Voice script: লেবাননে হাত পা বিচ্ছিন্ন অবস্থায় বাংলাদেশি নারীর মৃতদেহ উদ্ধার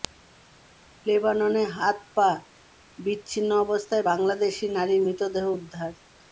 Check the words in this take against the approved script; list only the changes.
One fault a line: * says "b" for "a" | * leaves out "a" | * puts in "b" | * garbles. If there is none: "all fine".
all fine